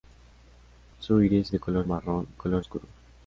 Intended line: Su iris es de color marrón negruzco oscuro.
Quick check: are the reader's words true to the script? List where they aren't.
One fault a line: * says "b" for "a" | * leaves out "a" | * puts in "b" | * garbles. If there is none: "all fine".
* leaves out "es"
* says "color" for "negruzco"